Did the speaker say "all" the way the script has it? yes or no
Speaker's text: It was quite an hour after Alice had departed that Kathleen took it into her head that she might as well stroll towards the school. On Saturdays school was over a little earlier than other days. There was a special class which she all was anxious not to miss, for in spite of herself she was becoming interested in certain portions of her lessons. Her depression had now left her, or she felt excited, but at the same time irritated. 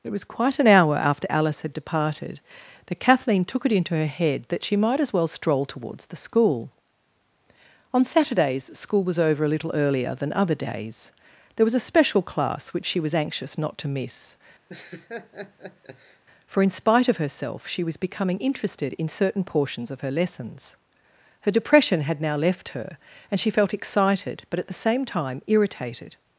no